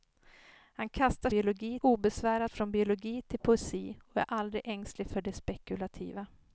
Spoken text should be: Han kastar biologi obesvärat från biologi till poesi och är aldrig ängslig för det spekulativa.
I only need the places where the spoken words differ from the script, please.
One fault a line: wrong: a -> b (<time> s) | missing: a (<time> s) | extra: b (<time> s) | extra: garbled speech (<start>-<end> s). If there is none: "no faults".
no faults